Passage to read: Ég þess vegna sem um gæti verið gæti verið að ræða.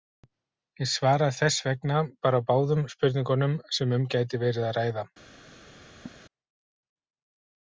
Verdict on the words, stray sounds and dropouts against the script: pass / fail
fail